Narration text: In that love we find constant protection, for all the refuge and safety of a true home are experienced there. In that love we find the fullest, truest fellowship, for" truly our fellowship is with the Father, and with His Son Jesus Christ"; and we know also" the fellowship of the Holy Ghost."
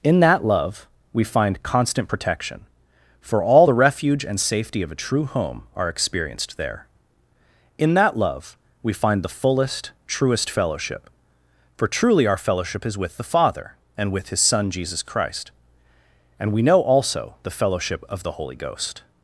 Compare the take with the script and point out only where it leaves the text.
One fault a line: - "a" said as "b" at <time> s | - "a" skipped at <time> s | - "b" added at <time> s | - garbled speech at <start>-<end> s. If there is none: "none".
none